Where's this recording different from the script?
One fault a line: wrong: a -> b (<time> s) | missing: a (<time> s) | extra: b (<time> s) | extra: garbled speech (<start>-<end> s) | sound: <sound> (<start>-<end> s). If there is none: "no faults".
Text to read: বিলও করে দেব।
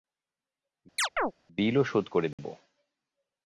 sound: chirp (1.0-1.3 s)
extra: শোধ (1.8 s)
sound: dropout (2.3-2.4 s)